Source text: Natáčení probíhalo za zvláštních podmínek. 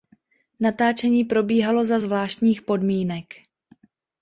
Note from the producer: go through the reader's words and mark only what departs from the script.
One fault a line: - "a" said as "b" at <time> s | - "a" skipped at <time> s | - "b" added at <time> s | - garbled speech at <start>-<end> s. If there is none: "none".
none